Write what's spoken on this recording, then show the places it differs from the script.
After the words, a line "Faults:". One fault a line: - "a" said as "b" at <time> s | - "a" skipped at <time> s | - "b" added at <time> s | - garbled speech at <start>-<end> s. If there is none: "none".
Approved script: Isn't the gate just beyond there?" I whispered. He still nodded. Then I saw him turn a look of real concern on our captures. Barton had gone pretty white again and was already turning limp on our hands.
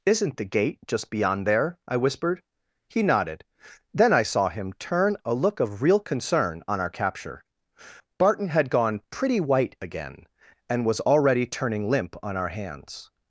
Isn't the gate just beyond there?" I whispered. He nodded. Then I saw him turn a look of real concern on our capture. Barton had gone pretty white again and was already turning limp on our hands.
Faults:
- "still" skipped at 3.0 s
- "captures" said as "capture" at 6.9 s